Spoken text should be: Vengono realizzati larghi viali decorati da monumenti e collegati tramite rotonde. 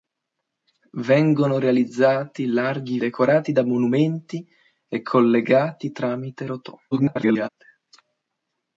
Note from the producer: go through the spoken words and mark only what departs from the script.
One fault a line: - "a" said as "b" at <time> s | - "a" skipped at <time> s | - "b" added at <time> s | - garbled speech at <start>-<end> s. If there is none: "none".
- "viali" skipped at 3.0 s
- garbled speech at 6.9-7.5 s